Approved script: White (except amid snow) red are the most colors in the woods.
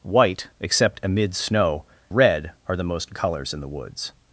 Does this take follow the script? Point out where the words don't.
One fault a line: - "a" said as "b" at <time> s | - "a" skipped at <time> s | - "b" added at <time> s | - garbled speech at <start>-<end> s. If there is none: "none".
none